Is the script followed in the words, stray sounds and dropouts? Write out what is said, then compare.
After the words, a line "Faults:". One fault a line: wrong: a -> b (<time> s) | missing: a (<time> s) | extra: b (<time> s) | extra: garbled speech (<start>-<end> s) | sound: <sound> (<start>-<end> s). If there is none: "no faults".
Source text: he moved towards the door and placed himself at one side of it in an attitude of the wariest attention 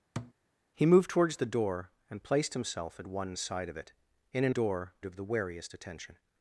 he moved towards the door and placed himself at one side of it in an door of the wariest attention
Faults:
sound: thud (0.2-0.3 s)
wrong: attitude -> door (4.5 s)